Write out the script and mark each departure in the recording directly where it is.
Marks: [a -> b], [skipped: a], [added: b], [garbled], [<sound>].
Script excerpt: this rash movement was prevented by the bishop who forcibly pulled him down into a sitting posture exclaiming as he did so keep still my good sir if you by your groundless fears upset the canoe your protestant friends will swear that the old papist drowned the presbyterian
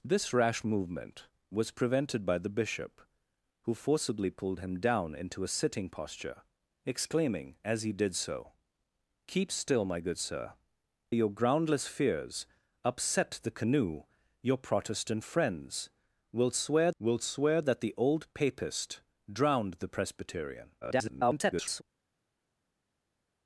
this rash movement was prevented by the bishop who forcibly pulled him down into a sitting posture exclaiming as he did so keep still my good sir [skipped: if you by] your groundless fears upset the canoe your protestant friends will swear [added: will swear] that the old papist drowned the presbyterian [garbled]